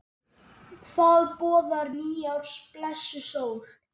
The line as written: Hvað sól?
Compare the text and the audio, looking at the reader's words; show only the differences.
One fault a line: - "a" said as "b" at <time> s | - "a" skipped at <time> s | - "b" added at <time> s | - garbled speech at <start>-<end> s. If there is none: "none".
- "boðar nýárs blessuð" added at 1.4 s